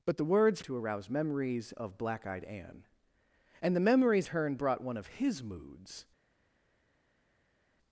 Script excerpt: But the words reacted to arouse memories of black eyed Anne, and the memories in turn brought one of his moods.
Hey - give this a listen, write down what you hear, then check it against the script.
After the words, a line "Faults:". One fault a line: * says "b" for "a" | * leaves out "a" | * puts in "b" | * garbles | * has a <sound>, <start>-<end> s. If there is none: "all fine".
But the words to arouse memories of black eyed Anne, and the memories turn brought one of his moods.
Faults:
* leaves out "reacted"
* leaves out "in"